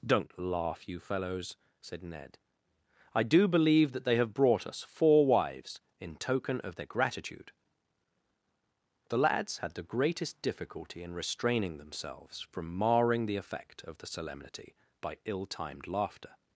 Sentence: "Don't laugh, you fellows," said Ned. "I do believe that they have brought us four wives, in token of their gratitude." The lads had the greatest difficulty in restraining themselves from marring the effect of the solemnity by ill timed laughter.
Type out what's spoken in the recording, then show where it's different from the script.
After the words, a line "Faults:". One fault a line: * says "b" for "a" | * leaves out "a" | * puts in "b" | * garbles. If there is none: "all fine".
"Don't laugh, you fellows," said Ned. "I do believe that they have brought us four wives, in token of their gratitude." The lads had the greatest difficulty in restraining themselves from marring the effect of the solemnity by ill timed laughter.
Faults:
all fine